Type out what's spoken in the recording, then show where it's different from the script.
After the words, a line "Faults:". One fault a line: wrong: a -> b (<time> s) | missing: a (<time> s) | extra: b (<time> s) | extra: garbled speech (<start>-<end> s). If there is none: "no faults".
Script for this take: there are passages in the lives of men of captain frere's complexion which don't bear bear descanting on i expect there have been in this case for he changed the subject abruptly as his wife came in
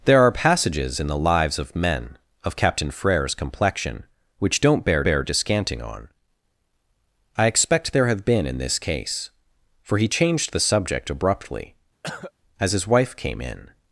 there are passages in the lives of men of captain frere's complexion which don't bear bear descanting on i expect there have been in this case for he changed the subject abruptly as his wife came in
Faults:
no faults